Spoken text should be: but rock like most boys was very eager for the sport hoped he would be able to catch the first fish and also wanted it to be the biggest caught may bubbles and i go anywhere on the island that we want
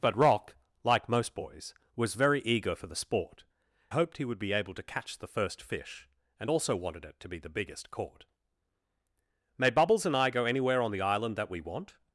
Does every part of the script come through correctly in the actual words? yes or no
yes